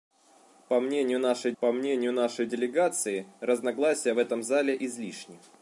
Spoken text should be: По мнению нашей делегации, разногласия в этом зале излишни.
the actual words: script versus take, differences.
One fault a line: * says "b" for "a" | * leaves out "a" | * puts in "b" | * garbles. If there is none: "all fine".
* puts in "по мнению нашей"